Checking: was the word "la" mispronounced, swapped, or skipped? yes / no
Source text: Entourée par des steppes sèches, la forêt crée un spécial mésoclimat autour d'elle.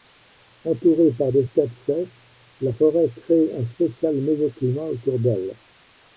no